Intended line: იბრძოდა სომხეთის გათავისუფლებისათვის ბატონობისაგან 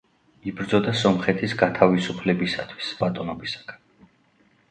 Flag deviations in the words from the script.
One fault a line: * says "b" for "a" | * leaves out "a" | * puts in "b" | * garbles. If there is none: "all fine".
all fine